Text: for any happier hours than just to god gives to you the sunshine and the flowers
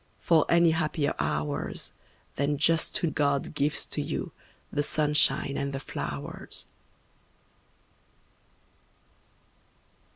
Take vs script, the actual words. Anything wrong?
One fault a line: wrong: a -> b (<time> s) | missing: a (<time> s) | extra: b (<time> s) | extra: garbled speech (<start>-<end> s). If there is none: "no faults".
no faults